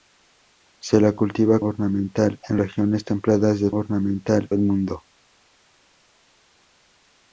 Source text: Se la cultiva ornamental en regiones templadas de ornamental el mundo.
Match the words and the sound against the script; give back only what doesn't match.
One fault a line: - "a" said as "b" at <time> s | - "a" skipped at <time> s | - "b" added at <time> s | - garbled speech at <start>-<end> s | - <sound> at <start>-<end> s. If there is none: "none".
none